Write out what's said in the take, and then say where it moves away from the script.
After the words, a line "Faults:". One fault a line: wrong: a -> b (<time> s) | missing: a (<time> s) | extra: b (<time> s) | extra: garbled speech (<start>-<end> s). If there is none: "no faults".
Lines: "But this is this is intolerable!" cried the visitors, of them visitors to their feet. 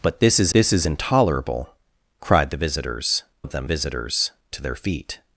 "But this is this is intolerable!" cried the visitors, of them visitors to their feet.
Faults:
no faults